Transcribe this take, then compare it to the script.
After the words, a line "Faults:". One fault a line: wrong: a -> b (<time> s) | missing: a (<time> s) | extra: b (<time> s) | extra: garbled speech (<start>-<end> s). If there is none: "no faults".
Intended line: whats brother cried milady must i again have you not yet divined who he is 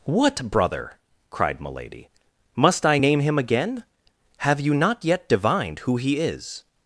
what brother cried milady must i name him again have you not yet divined who he is
Faults:
wrong: whats -> what (0.0 s)
extra: name him (3.0 s)